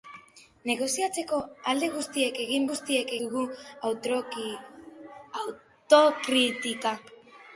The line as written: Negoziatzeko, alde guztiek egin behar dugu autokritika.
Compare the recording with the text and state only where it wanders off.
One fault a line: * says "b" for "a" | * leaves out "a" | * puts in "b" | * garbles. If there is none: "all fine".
* says "guztiek" for "behar"